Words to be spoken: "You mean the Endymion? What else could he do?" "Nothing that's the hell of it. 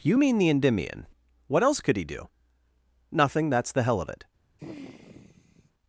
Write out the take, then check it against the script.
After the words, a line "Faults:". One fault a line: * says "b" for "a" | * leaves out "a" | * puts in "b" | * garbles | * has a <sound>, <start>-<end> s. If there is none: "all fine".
"You mean the Endymion? What else could he do?" "Nothing that's the hell of it.
Faults:
* has a sigh, 4.6-5.7 s